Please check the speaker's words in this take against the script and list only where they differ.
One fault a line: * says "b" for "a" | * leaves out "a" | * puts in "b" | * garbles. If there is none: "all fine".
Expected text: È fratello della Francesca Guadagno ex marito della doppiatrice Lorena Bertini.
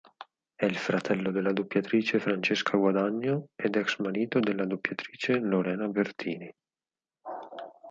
* puts in "il"
* puts in "doppiatrice"
* puts in "ed"